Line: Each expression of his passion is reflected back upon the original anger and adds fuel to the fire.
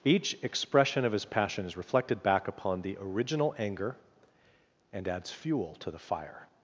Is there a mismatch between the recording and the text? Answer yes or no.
no